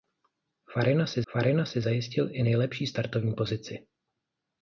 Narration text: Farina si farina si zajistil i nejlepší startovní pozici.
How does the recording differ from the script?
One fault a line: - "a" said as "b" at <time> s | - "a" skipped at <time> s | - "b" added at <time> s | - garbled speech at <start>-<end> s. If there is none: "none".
none